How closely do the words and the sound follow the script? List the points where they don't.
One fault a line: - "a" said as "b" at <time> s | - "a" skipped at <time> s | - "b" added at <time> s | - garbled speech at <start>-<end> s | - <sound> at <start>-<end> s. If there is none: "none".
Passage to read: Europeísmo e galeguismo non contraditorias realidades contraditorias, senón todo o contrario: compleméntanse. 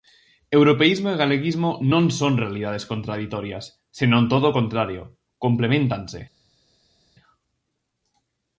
- "contraditorias" said as "son" at 2.2 s